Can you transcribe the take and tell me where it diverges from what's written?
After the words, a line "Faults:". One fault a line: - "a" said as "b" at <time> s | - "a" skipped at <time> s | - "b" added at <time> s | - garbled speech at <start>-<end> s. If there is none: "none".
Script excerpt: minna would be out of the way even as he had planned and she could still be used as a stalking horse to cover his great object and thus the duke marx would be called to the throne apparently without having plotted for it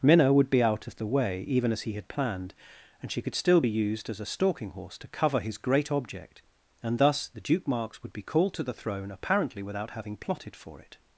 minna would be out of the way even as he had planned and she could still be used as a stalking horse to cover his great object and thus the duke marx would be called to the throne apparently without having plotted for it
Faults:
none